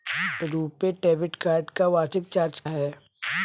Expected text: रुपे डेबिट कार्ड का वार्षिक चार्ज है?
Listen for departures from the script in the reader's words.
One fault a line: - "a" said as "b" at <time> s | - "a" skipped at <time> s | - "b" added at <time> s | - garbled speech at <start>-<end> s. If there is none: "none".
none